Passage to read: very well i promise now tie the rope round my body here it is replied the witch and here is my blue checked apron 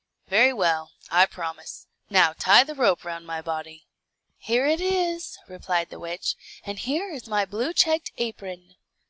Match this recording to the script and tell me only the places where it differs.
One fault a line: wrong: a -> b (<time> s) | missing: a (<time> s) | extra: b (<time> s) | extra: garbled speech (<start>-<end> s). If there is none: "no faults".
no faults